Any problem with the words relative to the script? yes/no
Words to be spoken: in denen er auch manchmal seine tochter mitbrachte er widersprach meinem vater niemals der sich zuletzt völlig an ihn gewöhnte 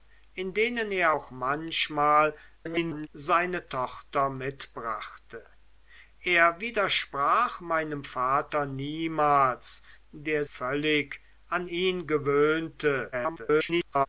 yes